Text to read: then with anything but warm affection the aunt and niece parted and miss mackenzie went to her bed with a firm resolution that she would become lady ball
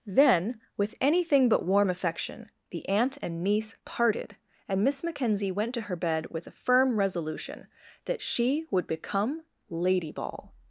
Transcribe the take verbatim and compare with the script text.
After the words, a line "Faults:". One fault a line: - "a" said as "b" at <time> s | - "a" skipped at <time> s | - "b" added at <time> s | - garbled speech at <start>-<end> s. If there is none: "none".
then with anything but warm affection the aunt and niece parted and miss mackenzie went to her bed with a firm resolution that she would become lady ball
Faults:
none